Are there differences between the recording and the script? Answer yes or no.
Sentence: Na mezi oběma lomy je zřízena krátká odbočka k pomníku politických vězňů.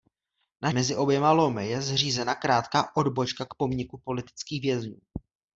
no